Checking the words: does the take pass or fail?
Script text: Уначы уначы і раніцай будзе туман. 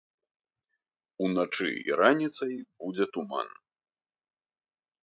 fail